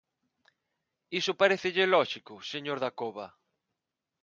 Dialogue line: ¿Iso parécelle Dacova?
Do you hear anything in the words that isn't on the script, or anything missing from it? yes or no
yes